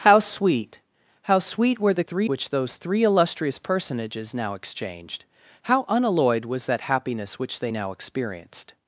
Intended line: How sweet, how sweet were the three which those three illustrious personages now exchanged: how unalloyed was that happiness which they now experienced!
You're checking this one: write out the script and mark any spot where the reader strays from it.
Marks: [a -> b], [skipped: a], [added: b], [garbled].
How sweet, how sweet were the three which those three illustrious personages now exchanged: how unalloyed was that happiness which they now experienced!